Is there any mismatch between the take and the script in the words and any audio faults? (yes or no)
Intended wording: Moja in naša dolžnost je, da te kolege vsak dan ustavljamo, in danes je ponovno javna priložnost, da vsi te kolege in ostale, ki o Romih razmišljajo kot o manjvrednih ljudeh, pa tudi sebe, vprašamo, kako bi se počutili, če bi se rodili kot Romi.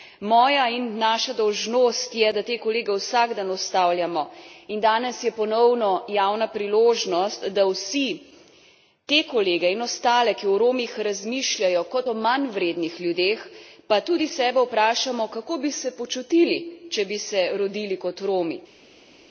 no